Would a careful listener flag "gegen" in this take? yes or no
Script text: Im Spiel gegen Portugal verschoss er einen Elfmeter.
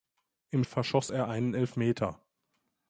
yes